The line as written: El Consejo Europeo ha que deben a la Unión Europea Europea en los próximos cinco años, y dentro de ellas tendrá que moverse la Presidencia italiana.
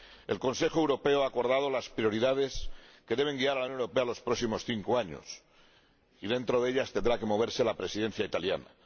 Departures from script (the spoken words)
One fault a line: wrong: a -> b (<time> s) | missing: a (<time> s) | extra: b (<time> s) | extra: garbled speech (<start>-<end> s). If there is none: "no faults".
extra: acordado las prioridades (1.3 s)
extra: guiar (3.4 s)
missing: Europea (4.0 s)